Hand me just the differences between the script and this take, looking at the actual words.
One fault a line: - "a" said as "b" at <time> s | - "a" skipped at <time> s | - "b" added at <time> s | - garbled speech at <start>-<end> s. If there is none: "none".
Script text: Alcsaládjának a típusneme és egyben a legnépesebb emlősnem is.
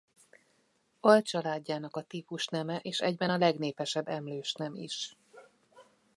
none